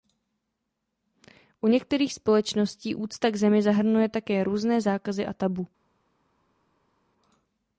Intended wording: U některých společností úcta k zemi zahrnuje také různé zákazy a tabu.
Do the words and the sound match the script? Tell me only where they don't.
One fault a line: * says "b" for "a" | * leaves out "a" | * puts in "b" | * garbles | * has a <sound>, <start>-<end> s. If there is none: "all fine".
all fine